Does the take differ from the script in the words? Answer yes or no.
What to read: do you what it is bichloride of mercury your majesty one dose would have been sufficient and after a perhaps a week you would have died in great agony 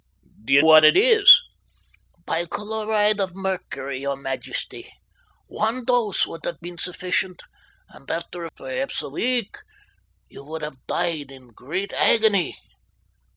no